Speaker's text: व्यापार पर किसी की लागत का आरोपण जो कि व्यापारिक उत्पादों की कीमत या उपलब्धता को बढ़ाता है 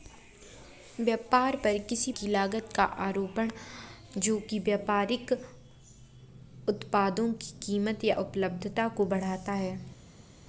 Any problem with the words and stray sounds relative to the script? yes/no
no